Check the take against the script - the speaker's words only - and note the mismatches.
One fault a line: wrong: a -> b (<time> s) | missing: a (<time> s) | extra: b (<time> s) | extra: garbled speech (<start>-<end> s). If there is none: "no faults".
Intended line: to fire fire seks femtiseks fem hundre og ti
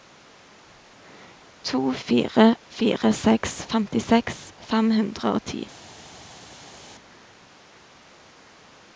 no faults